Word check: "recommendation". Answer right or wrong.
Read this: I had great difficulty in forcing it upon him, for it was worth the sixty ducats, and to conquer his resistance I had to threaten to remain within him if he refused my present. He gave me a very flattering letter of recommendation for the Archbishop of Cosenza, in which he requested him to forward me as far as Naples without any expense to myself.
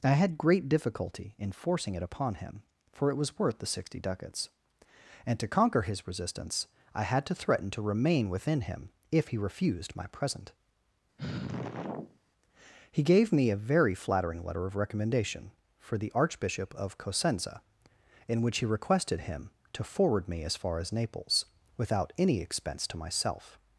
right